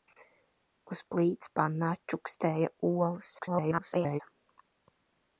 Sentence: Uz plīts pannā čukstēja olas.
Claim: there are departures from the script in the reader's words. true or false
true